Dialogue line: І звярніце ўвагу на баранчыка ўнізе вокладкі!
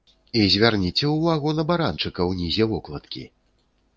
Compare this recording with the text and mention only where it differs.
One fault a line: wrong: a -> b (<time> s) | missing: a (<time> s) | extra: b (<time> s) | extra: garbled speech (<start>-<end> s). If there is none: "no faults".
no faults